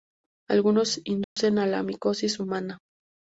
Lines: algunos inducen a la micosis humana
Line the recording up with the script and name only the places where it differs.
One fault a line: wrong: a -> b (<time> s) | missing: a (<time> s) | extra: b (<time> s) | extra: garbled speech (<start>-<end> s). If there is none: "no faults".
no faults